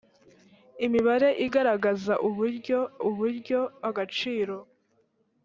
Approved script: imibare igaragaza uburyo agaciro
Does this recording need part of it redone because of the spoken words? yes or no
yes